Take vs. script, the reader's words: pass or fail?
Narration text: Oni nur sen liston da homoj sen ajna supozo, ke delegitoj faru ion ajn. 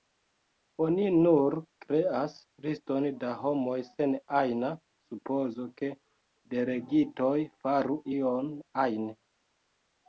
fail